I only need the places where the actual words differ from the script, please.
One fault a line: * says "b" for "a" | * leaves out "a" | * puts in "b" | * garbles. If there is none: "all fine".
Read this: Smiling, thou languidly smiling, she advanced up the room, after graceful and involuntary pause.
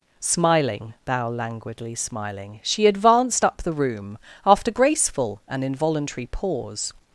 all fine